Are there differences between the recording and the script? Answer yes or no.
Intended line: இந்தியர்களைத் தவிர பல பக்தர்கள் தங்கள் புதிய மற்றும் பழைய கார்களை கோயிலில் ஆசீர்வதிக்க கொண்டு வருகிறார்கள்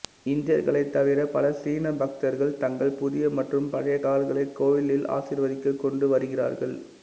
yes